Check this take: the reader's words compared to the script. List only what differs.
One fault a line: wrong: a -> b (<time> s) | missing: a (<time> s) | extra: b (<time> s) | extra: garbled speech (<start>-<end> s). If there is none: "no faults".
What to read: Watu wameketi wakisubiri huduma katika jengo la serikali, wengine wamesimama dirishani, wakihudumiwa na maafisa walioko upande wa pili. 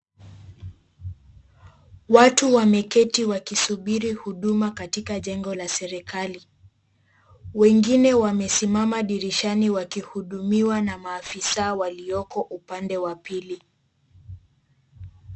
no faults